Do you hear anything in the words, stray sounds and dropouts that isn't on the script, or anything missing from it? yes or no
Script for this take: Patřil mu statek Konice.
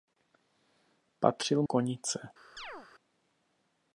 yes